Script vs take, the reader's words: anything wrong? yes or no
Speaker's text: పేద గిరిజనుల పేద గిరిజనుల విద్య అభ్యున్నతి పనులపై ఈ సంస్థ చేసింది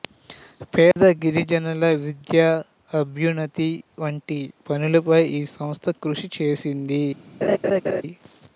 yes